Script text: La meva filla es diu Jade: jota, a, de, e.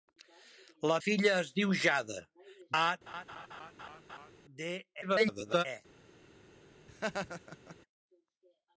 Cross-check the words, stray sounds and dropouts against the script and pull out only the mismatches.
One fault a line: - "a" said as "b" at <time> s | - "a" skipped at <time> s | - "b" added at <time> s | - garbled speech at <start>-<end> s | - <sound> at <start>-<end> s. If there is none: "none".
- "meva" skipped at 0.9 s
- "jota" skipped at 2.2 s
- laugh at 3.1-4.3 s
- garbled speech at 5.0-5.7 s
- laugh at 6.9-7.8 s